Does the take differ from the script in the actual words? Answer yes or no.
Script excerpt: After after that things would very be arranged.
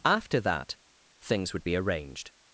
yes